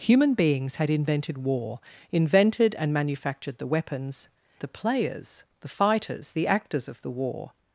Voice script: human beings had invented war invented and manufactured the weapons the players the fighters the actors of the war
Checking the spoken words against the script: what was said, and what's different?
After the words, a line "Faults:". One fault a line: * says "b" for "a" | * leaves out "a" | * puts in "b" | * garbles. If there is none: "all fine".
human beings had invented war invented and manufactured the weapons the players the fighters the actors of the war
Faults:
all fine